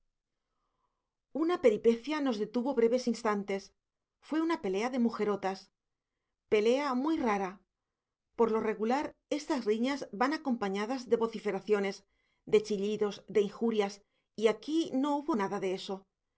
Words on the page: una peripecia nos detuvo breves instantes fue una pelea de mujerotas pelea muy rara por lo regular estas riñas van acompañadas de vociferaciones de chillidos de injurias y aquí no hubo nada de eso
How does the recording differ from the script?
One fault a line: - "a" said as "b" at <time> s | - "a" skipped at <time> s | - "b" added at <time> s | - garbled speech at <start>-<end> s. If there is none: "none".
none